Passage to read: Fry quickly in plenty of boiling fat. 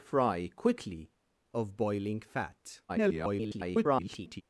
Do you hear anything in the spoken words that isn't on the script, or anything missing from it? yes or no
yes